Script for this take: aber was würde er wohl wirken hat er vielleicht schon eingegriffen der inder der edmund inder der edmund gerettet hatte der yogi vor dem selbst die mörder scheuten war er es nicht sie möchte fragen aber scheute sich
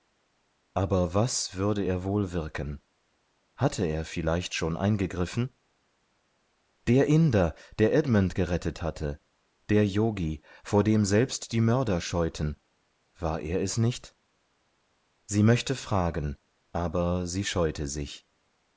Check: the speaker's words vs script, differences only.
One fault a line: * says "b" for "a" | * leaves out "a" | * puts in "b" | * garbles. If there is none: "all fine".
* says "hatte" for "hat"
* leaves out "inder der edmund"
* puts in "sie"